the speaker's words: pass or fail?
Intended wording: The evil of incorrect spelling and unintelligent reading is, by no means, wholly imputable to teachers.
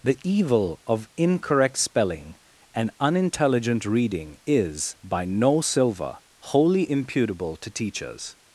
fail